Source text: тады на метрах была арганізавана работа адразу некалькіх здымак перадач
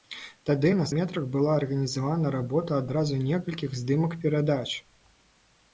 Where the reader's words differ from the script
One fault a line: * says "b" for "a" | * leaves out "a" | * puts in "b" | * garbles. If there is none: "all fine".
all fine